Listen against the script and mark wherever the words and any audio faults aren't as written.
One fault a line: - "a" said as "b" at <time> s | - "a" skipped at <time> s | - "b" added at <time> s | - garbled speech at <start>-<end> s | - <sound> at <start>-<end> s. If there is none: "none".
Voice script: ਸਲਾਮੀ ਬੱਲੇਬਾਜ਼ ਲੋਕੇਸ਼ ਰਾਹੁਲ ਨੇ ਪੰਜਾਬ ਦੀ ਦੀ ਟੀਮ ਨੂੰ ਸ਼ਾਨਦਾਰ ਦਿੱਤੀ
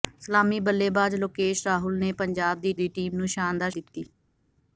none